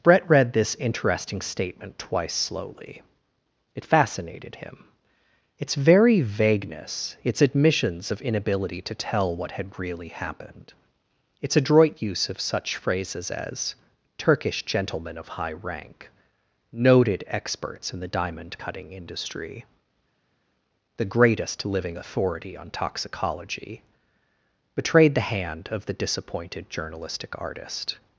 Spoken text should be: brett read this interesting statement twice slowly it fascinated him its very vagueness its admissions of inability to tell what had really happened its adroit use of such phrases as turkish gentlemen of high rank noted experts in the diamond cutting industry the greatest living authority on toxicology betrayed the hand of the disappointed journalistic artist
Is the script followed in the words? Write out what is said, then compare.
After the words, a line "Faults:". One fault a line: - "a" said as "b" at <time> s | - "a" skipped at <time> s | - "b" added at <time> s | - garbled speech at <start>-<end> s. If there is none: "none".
brett read this interesting statement twice slowly it fascinated him its very vagueness its admissions of inability to tell what had really happened its adroit use of such phrases as turkish gentlemen of high rank noted experts in the diamond cutting industry the greatest living authority on toxicology betrayed the hand of the disappointed journalistic artist
Faults:
none